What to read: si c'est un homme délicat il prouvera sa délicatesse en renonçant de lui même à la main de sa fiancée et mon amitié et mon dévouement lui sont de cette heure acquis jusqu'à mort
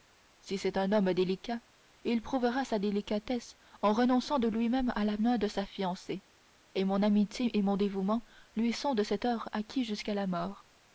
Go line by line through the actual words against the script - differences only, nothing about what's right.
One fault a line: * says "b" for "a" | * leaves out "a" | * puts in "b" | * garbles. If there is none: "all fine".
* puts in "la"